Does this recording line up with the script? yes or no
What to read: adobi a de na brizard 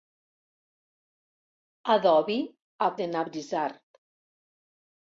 yes